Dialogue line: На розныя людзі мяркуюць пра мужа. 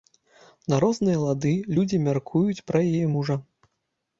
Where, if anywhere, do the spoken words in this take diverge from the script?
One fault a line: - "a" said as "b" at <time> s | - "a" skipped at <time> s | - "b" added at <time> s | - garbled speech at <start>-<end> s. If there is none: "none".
- "лады" added at 1.2 s
- "яе" added at 2.9 s